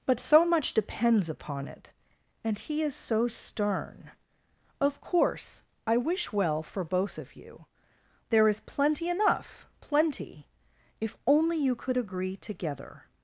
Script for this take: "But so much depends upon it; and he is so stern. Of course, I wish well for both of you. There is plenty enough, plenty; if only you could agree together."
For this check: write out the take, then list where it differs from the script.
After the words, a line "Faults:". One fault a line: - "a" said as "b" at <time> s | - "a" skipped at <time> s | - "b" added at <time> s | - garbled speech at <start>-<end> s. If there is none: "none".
"But so much depends upon it; and he is so stern. Of course, I wish well for both of you. There is plenty enough, plenty; if only you could agree together."
Faults:
none